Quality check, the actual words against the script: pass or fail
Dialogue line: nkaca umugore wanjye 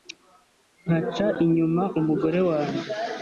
fail